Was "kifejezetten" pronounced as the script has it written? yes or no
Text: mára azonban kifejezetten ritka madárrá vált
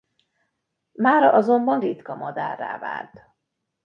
no